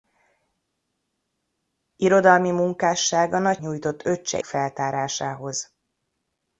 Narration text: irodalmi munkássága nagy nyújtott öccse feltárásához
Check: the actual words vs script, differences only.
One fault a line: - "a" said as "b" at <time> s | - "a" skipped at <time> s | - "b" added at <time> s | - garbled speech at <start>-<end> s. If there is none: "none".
none